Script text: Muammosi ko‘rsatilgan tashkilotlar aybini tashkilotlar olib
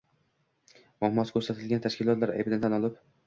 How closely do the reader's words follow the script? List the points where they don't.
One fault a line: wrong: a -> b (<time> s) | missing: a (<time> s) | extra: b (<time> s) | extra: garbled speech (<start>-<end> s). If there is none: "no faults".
wrong: tashkilotlar -> tan (2.7 s)